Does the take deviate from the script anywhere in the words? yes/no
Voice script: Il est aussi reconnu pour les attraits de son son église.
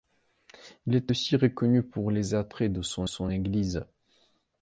no